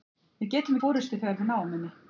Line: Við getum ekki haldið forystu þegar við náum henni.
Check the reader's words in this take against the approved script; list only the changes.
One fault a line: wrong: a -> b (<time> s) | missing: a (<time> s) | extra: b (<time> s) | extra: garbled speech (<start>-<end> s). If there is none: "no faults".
missing: ekki haldið (0.8 s)